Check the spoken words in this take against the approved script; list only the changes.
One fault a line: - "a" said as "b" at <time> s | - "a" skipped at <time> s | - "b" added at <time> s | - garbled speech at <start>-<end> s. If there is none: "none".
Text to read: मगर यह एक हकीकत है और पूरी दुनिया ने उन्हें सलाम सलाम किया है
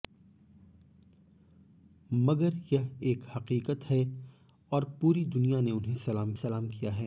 none